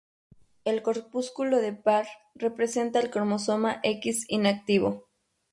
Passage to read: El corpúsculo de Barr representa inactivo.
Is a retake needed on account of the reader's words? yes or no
yes